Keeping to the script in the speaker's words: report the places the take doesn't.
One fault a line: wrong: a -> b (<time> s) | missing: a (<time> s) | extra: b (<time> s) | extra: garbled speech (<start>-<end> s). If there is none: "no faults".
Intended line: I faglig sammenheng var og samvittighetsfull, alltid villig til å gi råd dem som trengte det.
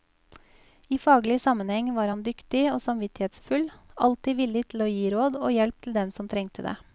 extra: han dyktig (2.1 s)
extra: og hjelp til (5.4 s)